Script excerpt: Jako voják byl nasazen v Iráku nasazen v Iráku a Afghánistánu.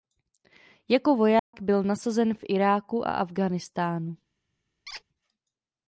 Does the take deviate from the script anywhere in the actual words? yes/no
yes